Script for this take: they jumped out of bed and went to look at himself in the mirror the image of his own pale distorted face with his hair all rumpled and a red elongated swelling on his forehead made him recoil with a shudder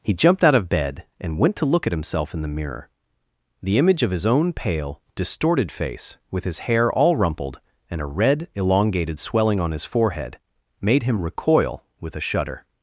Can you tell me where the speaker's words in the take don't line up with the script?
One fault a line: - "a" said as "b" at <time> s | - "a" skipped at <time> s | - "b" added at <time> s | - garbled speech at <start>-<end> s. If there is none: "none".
- "they" said as "he" at 0.0 s